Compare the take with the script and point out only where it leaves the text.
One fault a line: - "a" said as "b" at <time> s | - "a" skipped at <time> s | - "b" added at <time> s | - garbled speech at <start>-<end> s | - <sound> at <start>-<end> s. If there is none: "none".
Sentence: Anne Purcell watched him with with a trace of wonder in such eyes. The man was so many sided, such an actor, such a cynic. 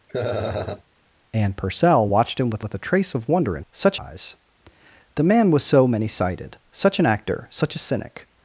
- laugh at 0.1-0.8 s